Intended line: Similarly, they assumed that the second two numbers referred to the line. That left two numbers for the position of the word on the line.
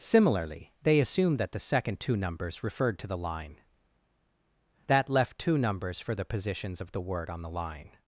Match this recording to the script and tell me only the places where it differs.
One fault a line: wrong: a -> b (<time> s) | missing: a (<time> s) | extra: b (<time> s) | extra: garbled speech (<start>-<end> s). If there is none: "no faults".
wrong: position -> positions (6.2 s)